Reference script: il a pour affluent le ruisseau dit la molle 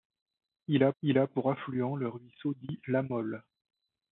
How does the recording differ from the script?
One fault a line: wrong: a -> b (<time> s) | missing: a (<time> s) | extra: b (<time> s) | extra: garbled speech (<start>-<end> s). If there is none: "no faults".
extra: il a (1.0 s)